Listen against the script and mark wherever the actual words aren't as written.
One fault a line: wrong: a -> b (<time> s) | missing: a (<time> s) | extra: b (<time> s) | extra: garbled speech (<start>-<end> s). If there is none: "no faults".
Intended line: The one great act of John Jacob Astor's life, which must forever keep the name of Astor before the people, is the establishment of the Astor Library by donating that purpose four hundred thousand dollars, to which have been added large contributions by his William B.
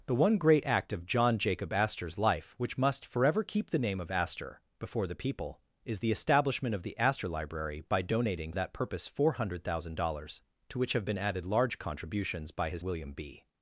no faults